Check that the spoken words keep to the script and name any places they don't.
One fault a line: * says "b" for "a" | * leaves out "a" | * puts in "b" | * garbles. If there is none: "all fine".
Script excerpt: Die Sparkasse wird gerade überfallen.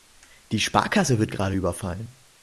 all fine